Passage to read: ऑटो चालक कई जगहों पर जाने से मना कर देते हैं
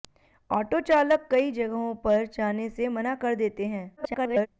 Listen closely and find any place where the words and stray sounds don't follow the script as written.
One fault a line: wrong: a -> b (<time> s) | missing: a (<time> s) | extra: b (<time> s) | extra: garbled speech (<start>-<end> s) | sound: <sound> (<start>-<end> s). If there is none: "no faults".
extra: garbled speech (4.0-4.5 s)